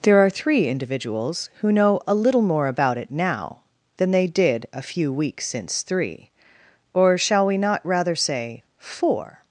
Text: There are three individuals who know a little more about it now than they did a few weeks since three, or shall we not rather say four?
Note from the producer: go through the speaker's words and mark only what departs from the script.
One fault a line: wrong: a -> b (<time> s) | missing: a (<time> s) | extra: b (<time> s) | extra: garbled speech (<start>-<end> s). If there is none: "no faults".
no faults